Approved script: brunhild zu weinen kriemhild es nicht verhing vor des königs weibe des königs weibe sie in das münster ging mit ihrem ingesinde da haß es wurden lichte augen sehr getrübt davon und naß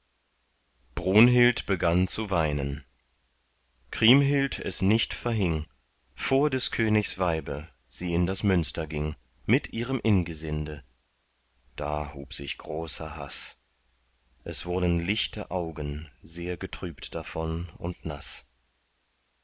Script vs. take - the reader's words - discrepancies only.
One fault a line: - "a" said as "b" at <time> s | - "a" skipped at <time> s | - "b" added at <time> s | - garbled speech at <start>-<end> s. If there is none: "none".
- "begann" added at 1.7 s
- "des königs weibe" skipped at 7.7 s
- "hub sich großer" added at 12.1 s